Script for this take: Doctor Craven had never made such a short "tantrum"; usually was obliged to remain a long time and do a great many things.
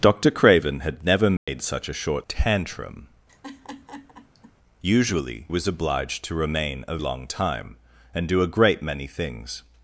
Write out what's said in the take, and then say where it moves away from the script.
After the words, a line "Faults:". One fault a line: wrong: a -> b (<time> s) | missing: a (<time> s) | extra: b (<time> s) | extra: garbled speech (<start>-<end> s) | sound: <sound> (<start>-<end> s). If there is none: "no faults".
Doctor Craven had never made such a short "tantrum"; usually was obliged to remain a long time and do a great many things.
Faults:
sound: dropout (1.4-1.5 s)
sound: laugh (3.3-4.5 s)